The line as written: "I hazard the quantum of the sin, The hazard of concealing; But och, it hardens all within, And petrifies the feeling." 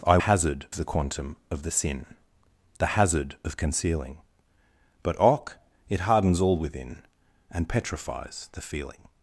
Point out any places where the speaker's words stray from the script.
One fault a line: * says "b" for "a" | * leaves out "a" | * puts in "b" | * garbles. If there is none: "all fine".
all fine